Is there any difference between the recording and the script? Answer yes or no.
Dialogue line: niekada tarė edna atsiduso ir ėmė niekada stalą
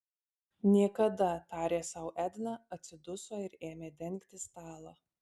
yes